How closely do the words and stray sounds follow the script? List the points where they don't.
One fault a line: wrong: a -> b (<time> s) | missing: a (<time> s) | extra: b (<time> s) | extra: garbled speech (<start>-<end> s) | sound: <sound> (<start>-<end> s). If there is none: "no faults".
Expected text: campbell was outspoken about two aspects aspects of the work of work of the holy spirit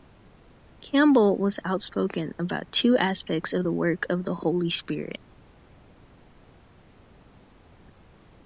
missing: aspects (3.5 s)
missing: work of (4.2 s)